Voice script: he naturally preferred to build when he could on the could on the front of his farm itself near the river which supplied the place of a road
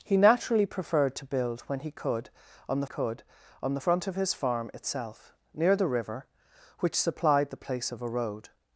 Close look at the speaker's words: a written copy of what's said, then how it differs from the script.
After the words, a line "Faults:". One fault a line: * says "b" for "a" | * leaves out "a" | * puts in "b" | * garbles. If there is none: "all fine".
he naturally preferred to build when he could on the could on the front of his farm itself near the river which supplied the place of a road
Faults:
all fine